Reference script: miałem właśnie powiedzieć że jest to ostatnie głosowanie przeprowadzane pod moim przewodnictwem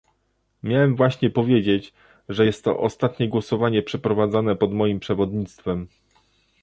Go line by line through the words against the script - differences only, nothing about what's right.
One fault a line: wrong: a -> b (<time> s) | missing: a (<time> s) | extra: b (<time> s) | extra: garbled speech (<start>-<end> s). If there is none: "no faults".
no faults